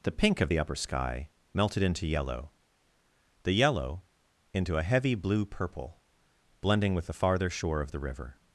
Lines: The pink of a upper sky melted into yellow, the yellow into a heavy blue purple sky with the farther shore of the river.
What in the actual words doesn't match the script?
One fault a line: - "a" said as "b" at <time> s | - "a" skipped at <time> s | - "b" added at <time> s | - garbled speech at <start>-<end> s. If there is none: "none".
- "a" said as "the" at 0.5 s
- "sky" said as "blending" at 6.6 s